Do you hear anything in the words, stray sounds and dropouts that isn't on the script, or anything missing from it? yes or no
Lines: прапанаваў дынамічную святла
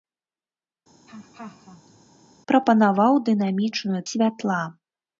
yes